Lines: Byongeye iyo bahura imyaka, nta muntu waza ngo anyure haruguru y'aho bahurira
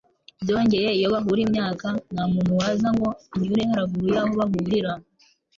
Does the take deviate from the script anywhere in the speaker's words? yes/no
no